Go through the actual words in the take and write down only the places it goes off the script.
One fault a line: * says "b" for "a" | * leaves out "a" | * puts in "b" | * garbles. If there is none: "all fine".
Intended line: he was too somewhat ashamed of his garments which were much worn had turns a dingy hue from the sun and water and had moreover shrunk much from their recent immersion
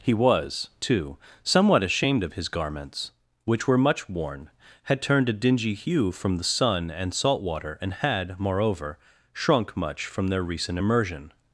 * says "turned" for "turns"
* puts in "salt"